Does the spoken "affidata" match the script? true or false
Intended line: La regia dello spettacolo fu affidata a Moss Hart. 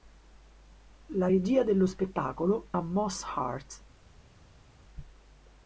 false